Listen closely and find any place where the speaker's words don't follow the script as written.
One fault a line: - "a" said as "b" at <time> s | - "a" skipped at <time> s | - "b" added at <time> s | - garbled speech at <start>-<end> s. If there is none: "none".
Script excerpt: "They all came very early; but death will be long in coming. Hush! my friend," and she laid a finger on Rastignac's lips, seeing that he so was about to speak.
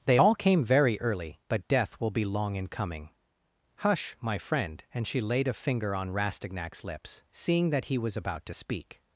- "so" skipped at 8.0 s